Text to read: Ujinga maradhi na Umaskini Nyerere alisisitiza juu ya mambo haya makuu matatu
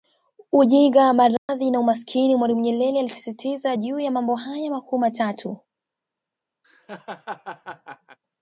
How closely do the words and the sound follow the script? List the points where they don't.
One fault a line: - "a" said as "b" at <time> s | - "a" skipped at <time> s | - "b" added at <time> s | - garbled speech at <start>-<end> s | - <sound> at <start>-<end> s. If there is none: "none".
- dropout at 1.4-1.5 s
- "Mwalimu" added at 2.4 s
- laugh at 6.6-8.2 s